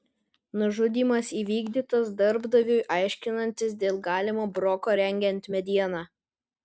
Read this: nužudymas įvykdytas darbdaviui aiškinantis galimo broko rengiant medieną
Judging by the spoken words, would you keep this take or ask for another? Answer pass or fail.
fail